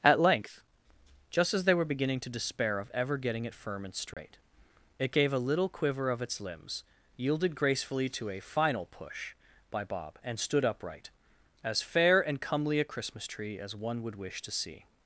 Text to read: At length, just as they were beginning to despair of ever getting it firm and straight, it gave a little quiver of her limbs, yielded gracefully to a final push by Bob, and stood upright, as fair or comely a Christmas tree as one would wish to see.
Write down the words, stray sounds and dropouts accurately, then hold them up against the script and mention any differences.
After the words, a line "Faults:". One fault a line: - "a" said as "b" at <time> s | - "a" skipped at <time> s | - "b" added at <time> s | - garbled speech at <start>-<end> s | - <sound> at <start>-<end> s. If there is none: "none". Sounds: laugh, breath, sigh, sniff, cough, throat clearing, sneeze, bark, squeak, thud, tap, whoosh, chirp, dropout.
At length, just as they were beginning to despair of ever getting it firm and straight, it gave a little quiver of its limbs, yielded gracefully to a final push by Bob, and stood upright, as fair and comely a Christmas tree as one would wish to see.
Faults:
- dropout at 4.1-4.2 s
- "her" said as "its" at 6.2 s
- "or" said as "and" at 12.2 s